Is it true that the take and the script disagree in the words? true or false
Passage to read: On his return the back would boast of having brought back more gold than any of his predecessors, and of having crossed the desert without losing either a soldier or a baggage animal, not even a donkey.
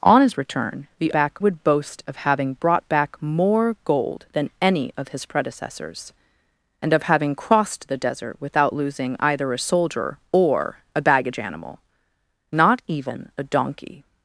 false